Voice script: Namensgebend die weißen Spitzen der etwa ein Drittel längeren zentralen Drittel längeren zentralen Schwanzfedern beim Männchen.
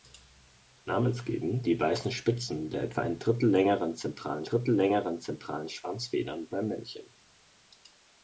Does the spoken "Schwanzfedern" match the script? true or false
true